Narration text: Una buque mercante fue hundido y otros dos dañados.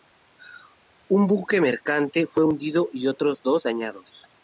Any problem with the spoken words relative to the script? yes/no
yes